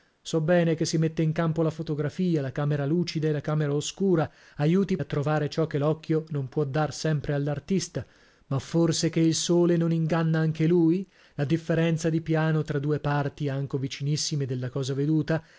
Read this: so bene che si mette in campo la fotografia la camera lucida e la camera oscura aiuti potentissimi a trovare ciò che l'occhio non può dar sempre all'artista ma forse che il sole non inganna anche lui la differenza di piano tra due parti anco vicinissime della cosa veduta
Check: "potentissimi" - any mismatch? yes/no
yes